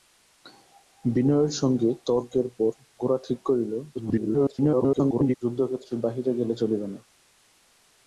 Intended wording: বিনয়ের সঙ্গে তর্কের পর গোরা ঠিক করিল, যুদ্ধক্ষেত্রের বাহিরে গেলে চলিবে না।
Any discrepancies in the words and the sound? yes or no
yes